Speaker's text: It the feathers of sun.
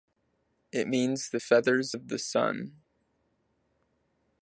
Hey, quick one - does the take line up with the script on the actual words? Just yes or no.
no